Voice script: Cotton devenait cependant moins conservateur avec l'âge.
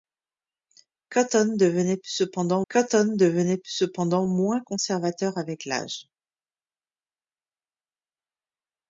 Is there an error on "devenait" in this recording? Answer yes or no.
no